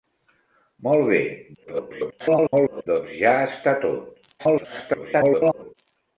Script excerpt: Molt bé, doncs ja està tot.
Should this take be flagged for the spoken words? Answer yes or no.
yes